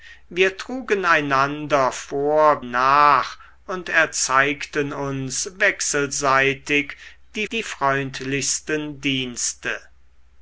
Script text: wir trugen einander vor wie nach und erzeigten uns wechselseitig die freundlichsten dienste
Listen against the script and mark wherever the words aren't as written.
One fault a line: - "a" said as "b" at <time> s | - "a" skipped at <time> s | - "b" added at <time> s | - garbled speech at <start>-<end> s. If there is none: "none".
- "wie" skipped at 2.6 s
- "die" added at 7.5 s